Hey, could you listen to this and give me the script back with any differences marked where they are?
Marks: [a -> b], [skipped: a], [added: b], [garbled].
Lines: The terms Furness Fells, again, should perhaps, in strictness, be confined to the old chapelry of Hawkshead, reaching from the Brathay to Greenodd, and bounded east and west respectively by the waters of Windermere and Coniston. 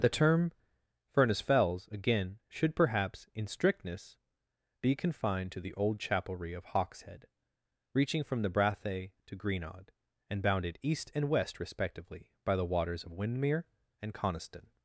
The [terms -> term] Furness Fells, again, should perhaps, in strictness, be confined to the old chapelry of Hawkshead, reaching from the Brathay to Greenodd, and bounded east and west respectively by the waters of Windermere and Coniston.